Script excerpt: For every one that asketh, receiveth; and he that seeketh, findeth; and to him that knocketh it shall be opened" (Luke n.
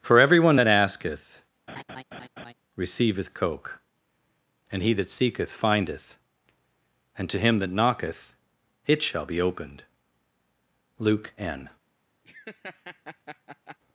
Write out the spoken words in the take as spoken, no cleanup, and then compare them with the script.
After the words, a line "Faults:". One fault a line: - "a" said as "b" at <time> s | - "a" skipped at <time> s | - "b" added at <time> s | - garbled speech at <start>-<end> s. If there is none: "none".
For every one that asketh, receiveth; coke and he that seeketh, findeth; and to him that knocketh it shall be opened" (Luke n.
Faults:
- "coke" added at 3.3 s